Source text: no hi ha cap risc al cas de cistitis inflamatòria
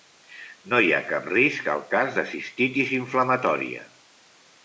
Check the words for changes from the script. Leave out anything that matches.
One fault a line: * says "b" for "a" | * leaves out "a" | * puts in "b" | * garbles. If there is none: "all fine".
all fine